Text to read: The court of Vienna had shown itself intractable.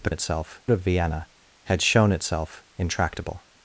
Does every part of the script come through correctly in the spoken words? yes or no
no